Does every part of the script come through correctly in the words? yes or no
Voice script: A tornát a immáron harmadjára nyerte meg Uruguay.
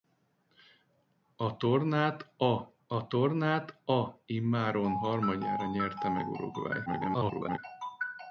no